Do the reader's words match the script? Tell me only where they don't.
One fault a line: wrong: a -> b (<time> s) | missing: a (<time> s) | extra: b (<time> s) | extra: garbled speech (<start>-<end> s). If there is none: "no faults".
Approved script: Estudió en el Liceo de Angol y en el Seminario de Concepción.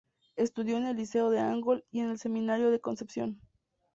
no faults